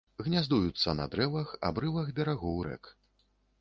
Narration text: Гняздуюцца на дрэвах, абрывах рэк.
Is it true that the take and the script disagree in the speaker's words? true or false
true